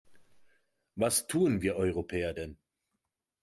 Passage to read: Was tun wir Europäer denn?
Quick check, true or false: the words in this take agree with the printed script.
true